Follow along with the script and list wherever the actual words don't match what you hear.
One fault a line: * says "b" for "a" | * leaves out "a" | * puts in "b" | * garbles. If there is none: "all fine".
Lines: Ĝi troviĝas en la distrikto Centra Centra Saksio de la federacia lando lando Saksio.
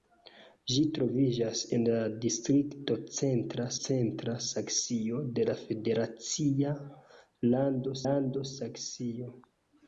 all fine